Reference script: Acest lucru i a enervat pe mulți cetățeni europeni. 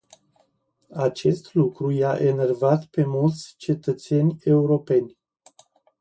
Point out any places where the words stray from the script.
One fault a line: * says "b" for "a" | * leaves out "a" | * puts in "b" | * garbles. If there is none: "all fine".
all fine